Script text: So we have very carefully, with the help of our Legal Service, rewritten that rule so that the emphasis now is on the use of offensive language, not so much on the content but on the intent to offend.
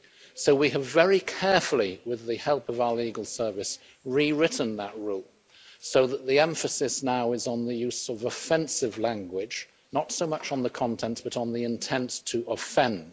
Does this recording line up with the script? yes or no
yes